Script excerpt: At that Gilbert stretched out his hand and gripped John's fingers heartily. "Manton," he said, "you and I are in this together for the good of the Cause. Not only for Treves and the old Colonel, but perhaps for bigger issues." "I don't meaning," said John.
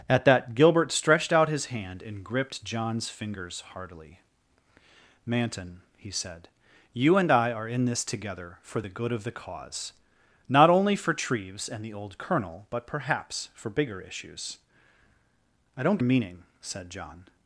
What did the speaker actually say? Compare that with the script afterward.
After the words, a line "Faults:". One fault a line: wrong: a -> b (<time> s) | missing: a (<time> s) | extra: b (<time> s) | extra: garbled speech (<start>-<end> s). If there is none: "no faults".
At that Gilbert stretched out his hand and gripped John's fingers heartily. "Manton," he said, "you and I are in this together for the good of the Cause. Not only for Treves and the old Colonel, but perhaps for bigger issues." "I don't meaning," said John.
Faults:
no faults